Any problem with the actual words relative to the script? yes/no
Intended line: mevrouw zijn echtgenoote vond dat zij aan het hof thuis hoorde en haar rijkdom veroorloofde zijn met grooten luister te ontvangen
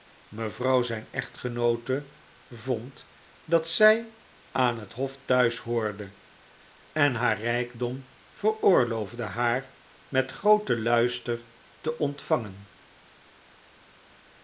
yes